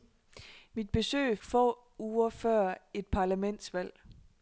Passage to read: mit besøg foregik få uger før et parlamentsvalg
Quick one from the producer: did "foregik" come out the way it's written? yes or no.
no